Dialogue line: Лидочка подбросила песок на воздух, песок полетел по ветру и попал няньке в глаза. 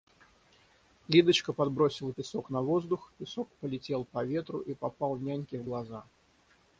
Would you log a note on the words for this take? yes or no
no